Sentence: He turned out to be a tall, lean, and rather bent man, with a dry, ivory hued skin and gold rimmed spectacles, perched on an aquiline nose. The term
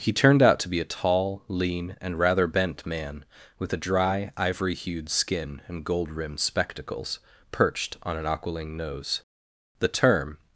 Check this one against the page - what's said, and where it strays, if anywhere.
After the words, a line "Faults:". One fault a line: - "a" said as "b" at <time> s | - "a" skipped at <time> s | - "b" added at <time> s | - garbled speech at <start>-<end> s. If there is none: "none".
He turned out to be a tall, lean, and rather bent man, with a dry, ivory hued skin and gold rimmed spectacles, perched on an aquiline nose. The term
Faults:
none